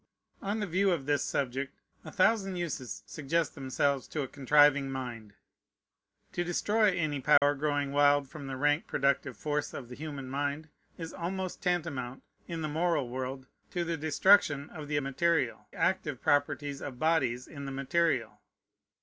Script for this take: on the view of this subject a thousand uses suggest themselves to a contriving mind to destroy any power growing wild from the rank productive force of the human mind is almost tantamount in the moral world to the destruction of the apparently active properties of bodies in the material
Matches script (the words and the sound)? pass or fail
fail